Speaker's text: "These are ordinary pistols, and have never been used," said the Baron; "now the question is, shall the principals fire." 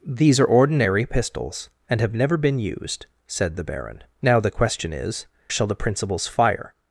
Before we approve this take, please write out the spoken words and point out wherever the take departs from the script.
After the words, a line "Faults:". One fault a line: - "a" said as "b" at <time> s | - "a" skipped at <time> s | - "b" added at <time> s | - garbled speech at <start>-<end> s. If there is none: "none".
"These are ordinary pistols, and have never been used," said the Baron; "now the question is, shall the principals fire."
Faults:
none